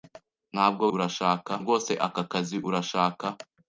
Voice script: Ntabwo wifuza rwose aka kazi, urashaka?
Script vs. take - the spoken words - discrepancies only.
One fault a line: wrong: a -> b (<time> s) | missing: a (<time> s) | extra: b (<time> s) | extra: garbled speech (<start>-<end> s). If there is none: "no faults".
wrong: wifuza -> urashaka (0.9 s)